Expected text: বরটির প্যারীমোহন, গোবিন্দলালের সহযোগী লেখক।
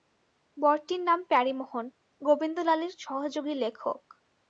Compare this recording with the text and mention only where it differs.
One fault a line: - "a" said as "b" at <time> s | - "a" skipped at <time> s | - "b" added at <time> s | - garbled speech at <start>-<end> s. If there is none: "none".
- "নাম" added at 1.0 s